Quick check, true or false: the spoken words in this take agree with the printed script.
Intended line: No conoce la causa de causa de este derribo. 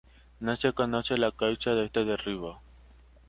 false